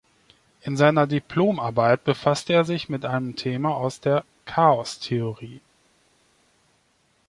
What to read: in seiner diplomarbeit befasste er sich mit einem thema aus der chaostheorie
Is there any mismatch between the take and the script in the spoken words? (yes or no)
no